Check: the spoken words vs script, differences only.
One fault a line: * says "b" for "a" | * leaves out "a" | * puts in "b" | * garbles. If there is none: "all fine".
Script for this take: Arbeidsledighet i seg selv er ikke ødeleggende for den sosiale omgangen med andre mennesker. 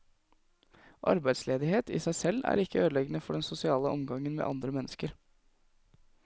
all fine